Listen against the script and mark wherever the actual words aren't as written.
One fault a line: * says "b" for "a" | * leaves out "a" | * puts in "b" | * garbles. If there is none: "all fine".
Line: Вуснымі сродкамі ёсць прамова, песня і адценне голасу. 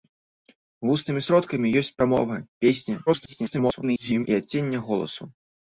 * garbles